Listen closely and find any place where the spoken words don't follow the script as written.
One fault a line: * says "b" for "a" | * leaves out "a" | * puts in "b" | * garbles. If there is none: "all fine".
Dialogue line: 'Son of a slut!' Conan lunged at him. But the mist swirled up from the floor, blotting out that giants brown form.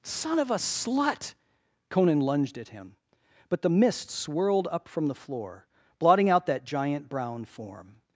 * says "giant" for "giants"